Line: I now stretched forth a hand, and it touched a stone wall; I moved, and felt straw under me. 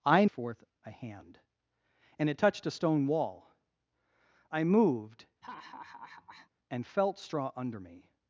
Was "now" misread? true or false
true